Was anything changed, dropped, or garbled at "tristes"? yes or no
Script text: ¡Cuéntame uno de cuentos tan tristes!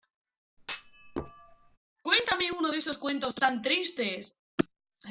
no